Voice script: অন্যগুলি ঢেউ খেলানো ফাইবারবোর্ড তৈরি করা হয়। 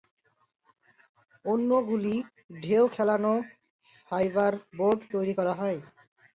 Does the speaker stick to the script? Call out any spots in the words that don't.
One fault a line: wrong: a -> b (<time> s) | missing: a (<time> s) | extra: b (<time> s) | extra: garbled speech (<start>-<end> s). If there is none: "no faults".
no faults